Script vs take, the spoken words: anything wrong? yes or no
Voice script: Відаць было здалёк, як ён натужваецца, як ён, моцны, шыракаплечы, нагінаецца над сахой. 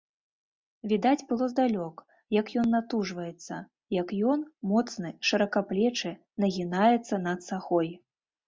no